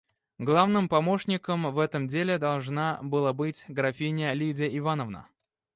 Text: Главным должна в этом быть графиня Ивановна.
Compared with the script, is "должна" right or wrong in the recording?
wrong